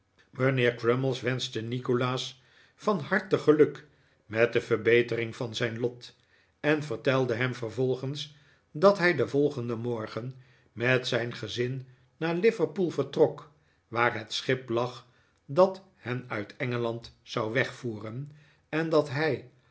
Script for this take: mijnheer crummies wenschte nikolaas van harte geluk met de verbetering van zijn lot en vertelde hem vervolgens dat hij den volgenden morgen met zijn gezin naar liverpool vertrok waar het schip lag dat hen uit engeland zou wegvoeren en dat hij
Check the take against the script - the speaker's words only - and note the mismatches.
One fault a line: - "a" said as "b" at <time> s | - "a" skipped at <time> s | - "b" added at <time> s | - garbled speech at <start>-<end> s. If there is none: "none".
none